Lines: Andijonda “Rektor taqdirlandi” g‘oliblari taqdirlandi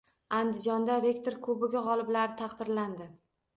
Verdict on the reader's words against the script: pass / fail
fail